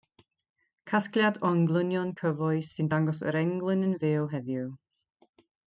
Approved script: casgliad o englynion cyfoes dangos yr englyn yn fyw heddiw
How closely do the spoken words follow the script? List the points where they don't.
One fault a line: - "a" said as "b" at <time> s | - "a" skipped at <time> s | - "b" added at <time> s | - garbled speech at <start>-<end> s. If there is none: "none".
- "sy'n" added at 2.7 s